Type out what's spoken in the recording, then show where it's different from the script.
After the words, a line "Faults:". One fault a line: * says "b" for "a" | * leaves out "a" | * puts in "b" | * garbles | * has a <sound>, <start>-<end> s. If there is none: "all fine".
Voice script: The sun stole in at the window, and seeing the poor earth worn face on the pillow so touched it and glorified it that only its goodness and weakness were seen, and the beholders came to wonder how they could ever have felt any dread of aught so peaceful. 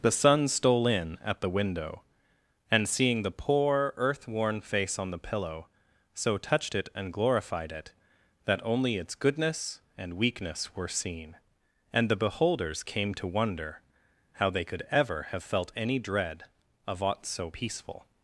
The sun stole in at the window, and seeing the poor earth worn face on the pillow so touched it and glorified it that only its goodness and weakness were seen, and the beholders came to wonder how they could ever have felt any dread of aught so peaceful.
Faults:
all fine